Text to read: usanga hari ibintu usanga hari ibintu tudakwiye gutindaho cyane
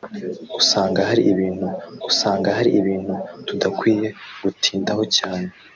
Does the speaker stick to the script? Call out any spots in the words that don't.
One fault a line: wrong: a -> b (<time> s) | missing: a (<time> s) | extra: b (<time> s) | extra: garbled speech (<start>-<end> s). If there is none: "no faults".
no faults